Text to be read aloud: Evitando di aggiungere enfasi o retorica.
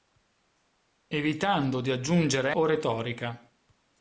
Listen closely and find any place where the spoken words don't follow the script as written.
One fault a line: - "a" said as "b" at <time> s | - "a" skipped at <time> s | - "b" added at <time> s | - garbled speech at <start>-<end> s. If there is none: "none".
- "enfasi" skipped at 2.5 s